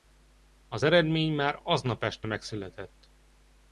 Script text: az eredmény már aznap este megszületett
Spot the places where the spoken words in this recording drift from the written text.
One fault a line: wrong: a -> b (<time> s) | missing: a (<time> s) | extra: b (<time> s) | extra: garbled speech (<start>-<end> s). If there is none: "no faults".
no faults